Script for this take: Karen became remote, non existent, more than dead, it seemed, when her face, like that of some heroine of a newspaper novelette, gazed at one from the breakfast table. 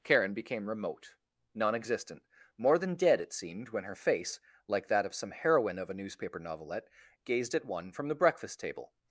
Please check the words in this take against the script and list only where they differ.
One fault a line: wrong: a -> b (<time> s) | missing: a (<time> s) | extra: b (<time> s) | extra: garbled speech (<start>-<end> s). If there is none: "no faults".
no faults